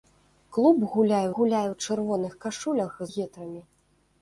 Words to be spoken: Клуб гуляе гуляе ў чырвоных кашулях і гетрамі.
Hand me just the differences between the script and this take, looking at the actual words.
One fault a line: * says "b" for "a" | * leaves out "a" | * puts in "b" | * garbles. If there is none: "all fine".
all fine